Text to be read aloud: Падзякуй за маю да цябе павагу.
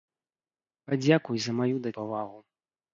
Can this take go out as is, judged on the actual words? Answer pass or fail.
fail